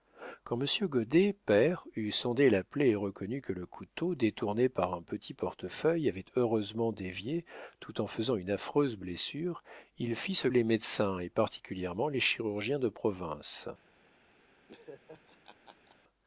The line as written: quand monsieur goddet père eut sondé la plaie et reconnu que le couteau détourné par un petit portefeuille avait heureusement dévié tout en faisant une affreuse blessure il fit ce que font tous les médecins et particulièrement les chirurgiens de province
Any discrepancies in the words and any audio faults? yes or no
yes